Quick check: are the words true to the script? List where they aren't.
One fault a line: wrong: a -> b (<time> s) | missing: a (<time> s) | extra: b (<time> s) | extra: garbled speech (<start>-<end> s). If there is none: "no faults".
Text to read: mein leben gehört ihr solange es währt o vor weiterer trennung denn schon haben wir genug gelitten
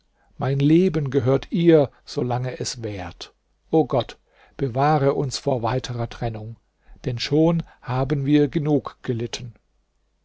extra: gott bewahre uns (3.8 s)